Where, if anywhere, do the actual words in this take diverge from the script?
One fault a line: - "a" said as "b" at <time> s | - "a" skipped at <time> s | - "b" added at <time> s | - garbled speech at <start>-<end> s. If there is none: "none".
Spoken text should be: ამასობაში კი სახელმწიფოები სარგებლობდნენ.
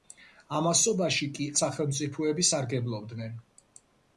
none